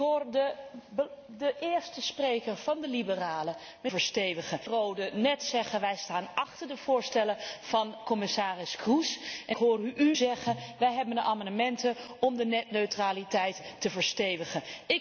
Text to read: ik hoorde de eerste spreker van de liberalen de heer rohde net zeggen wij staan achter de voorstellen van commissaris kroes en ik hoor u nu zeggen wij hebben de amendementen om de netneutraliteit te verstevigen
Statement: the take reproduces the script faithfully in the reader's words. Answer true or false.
false